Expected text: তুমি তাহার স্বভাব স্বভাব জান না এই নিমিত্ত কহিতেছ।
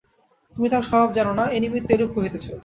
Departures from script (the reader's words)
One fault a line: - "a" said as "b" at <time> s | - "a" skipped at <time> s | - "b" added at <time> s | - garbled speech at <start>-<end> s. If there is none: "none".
- "স্বভাব" skipped at 1.1 s
- "এরূপ" added at 1.9 s